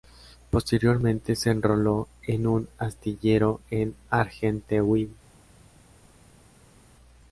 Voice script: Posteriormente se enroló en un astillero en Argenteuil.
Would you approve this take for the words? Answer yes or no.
yes